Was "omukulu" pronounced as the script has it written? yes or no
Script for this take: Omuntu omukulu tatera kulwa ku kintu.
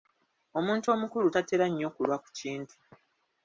yes